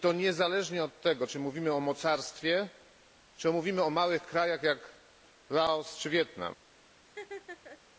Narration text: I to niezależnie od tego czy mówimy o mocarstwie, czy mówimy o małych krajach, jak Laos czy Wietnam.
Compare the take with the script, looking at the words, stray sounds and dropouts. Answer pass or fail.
fail